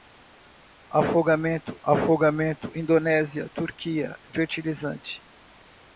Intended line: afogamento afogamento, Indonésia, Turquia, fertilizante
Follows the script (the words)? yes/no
yes